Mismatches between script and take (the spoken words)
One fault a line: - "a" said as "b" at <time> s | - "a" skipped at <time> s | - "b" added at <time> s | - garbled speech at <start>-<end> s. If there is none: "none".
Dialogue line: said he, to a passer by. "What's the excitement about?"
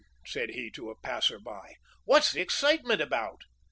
none